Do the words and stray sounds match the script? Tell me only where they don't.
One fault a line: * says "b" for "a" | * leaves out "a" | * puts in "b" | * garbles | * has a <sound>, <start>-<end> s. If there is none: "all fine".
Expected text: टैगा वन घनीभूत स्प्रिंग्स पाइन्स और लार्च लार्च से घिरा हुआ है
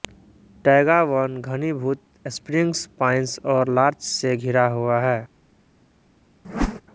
* leaves out "लार्च"
* has a whoosh, 6.4-6.8 s